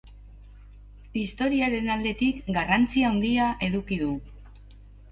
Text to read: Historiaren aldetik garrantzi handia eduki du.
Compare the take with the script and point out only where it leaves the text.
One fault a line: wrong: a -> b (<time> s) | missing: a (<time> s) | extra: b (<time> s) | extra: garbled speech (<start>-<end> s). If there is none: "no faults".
no faults